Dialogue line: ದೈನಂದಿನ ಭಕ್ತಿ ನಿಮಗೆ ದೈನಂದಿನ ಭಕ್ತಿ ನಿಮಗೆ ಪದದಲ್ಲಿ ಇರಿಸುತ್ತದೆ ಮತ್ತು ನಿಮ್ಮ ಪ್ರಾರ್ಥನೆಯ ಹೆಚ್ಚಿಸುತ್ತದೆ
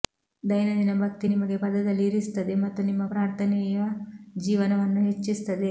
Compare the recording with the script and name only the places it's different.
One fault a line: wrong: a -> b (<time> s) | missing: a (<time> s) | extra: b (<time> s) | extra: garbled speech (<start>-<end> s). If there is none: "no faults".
missing: ದೈನಂದಿನ ಭಕ್ತಿ ನಿಮಗೆ (1.6 s)
extra: ಜೀವನವನ್ನು (4.4 s)